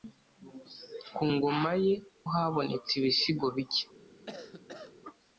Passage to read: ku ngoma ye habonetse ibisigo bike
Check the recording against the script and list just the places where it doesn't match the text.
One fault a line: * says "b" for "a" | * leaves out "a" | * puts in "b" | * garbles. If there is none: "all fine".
all fine